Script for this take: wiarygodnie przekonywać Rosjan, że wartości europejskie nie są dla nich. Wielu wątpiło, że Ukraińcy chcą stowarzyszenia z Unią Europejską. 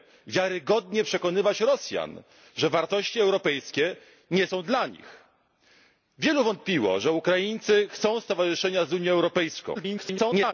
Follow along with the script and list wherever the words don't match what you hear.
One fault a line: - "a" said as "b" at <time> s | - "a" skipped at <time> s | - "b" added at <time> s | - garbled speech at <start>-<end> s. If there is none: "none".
- garbled speech at 9.7-10.5 s